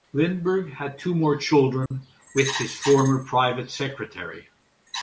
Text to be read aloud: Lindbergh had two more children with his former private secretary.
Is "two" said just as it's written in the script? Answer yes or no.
yes